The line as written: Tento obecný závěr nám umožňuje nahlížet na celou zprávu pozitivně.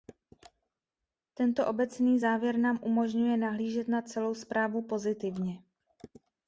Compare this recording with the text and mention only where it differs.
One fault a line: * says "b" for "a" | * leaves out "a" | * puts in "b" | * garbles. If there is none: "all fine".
all fine